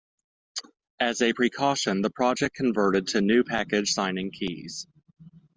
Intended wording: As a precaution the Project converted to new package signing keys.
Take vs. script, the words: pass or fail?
pass